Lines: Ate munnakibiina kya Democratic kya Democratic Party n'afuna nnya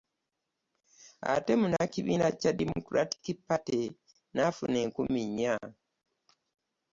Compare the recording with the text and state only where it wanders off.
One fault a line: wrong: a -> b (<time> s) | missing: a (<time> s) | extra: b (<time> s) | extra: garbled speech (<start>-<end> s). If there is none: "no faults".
missing: kya Democratic (3.2 s)
extra: enkumi (4.8 s)